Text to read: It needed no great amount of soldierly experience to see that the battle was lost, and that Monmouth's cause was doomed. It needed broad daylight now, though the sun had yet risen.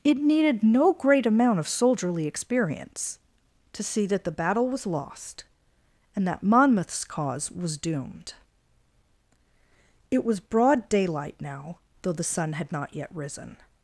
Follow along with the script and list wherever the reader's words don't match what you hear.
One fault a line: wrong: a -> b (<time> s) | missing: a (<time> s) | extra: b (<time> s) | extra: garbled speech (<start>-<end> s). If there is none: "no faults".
wrong: needed -> was (10.2 s)
extra: not (12.7 s)